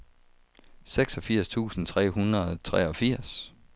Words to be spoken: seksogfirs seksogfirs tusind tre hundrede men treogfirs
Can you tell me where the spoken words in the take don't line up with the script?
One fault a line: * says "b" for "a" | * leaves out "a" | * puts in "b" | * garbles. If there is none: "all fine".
* leaves out "seksogfirs"
* says "og" for "men"